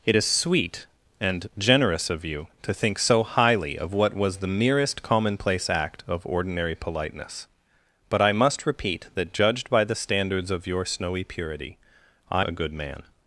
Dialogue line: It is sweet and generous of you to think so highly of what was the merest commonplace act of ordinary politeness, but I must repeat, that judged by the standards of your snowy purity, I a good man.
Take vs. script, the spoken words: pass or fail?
pass